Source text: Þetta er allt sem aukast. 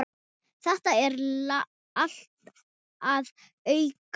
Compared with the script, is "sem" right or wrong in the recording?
wrong